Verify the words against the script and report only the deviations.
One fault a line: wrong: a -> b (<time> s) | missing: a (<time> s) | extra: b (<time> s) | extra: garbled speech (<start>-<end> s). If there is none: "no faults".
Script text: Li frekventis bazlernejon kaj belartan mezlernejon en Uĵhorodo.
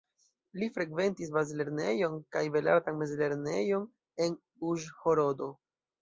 no faults